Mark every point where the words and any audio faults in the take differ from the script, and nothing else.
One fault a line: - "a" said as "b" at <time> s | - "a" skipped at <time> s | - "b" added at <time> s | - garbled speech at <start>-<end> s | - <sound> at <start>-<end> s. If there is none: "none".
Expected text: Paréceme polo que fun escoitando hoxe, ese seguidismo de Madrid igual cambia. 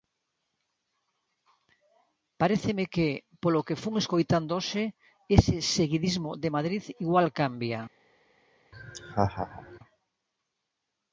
- "que" added at 2.9 s
- laugh at 8.7-9.8 s